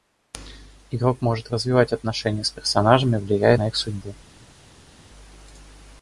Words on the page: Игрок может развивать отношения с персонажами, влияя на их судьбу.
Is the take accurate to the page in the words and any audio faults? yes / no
yes